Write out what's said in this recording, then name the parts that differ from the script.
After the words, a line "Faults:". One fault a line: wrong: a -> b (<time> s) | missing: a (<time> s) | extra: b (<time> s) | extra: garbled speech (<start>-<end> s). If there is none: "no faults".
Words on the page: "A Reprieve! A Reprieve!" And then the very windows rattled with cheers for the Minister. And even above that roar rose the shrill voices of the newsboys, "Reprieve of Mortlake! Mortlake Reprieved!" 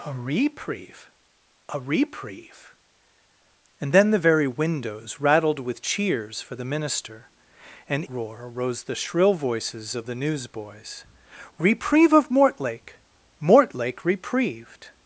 "A Reprieve! A Reprieve!" And then the very windows rattled with cheers for the Minister. And roar rose the shrill voices of the newsboys, "Reprieve of Mortlake! Mortlake Reprieved!"
Faults:
missing: even above that (8.0 s)